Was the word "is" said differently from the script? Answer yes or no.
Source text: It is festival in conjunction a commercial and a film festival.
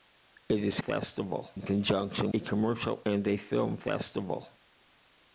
no